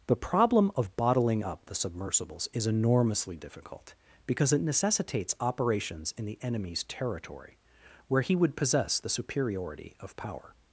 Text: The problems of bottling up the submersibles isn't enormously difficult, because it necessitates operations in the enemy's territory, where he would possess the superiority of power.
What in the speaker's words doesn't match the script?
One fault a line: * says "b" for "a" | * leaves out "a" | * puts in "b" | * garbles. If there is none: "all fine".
* says "problem" for "problems"
* says "is" for "isn't"